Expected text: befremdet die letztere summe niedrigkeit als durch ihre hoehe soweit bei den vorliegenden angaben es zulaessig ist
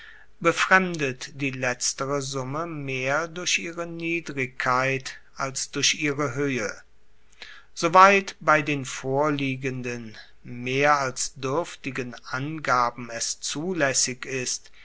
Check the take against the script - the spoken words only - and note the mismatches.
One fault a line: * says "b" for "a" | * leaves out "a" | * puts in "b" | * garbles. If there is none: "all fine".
* puts in "mehr durch ihre"
* puts in "mehr als duerftigen"